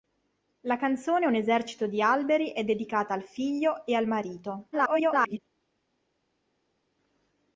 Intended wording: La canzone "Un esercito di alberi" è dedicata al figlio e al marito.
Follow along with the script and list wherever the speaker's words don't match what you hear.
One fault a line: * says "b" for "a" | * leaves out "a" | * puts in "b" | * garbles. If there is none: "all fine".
* garbles